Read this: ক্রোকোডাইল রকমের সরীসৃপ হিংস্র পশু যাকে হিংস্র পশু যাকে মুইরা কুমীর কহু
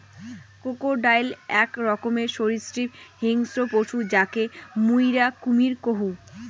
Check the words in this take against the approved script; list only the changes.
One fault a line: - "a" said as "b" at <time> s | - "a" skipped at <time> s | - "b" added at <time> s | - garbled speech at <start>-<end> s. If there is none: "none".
- "আক" added at 1.6 s
- "হিংস্র পশু যাকে" skipped at 4.4 s